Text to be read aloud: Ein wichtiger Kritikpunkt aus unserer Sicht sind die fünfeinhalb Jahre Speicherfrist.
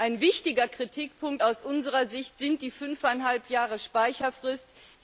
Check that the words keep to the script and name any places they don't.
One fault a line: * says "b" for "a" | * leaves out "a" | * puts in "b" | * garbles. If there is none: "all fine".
all fine